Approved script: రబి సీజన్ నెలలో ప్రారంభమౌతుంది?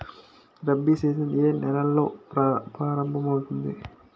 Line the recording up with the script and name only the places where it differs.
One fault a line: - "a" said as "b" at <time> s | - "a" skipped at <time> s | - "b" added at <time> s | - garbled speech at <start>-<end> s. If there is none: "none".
- "ఏ" added at 1.4 s